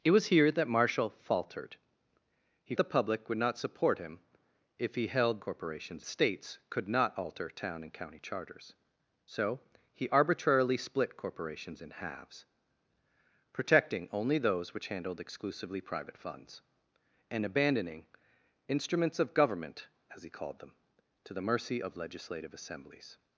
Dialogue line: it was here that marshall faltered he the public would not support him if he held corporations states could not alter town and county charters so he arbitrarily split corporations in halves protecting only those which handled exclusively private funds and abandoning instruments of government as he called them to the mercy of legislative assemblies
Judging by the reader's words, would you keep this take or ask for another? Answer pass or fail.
pass